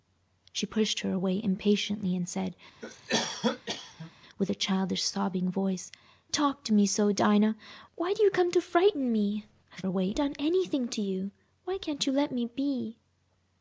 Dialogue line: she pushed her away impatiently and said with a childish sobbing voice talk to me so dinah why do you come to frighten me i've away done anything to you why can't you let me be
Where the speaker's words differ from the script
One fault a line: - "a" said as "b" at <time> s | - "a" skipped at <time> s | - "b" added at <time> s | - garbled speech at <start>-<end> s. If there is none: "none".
none